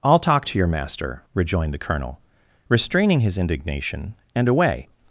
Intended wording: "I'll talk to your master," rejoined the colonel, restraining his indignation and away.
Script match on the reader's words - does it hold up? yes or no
yes